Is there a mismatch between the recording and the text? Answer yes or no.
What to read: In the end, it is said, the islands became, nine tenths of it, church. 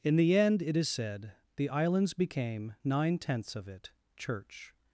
no